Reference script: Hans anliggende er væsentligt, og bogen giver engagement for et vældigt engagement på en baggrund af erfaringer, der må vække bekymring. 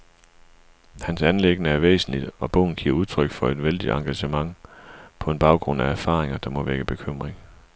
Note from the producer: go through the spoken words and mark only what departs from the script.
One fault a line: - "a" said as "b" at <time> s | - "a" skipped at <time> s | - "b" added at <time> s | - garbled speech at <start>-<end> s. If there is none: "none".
- "engagement" said as "udtryk" at 2.9 s